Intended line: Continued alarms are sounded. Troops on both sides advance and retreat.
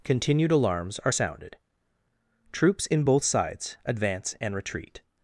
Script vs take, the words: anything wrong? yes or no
yes